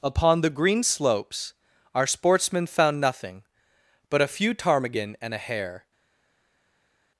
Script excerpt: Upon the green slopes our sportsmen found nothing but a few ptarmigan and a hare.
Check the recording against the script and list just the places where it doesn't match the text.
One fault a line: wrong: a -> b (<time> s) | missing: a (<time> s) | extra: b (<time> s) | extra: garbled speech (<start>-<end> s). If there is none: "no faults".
no faults